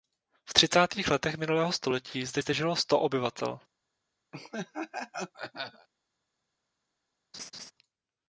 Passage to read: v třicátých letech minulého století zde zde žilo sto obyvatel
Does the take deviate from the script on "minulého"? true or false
false